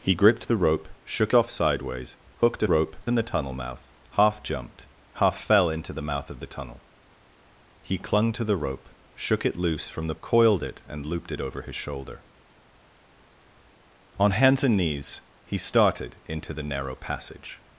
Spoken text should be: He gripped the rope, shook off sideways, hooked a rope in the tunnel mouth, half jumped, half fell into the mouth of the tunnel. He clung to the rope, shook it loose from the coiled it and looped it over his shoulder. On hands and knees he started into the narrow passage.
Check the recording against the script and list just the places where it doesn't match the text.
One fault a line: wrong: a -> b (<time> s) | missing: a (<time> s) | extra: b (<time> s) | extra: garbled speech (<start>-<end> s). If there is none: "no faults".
no faults